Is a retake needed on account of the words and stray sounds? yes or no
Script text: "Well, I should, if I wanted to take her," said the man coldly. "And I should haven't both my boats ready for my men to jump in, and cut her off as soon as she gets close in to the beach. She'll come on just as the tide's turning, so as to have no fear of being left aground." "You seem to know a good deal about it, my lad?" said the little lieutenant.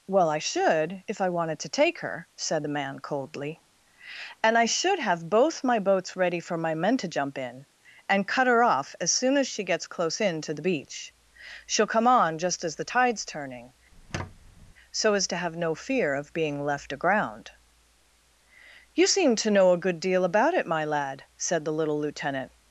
yes